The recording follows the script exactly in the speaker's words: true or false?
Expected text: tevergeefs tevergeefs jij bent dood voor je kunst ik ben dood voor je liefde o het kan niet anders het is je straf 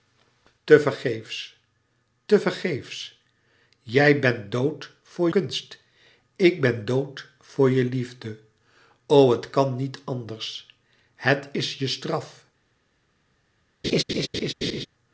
false